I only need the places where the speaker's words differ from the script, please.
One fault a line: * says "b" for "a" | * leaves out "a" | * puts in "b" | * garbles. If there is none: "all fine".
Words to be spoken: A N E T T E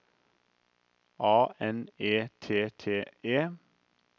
all fine